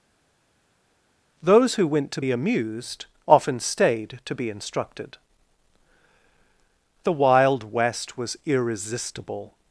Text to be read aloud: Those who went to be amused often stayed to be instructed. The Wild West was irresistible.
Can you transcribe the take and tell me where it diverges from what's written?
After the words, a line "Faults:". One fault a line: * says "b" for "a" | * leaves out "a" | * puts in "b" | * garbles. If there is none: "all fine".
Those who went to be amused often stayed to be instructed. The Wild West was irresistible.
Faults:
all fine